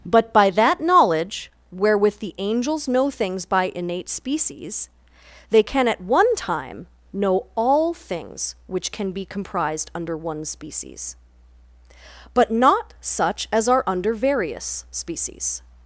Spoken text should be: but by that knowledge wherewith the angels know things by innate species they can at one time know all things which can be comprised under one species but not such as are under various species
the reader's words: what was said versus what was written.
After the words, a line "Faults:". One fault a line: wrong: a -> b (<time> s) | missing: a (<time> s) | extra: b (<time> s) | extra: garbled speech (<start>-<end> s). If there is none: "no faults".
but by that knowledge wherewith the angels know things by innate species they can at one time know all things which can be comprised under one species but not such as are under various species
Faults:
no faults